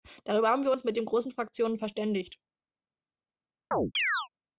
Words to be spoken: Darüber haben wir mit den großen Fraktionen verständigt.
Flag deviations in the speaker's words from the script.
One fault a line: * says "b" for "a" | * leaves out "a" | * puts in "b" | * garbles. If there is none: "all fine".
* puts in "uns"